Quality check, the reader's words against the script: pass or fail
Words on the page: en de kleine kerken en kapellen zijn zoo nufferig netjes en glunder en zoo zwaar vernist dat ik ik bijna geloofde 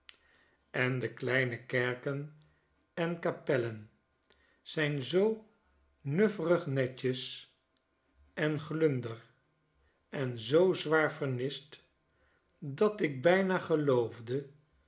fail